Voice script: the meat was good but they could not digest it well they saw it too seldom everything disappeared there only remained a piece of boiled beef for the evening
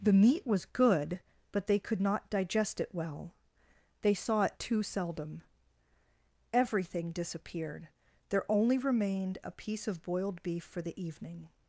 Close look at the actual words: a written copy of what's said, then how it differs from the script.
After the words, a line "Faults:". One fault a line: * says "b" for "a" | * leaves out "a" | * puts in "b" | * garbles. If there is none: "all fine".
the meat was good but they could not digest it well they saw it too seldom everything disappeared there only remained a piece of boiled beef for the evening
Faults:
all fine